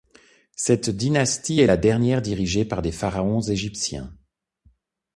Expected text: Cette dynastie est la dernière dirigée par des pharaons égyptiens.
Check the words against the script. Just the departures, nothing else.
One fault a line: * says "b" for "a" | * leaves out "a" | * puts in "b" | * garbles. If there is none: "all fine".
all fine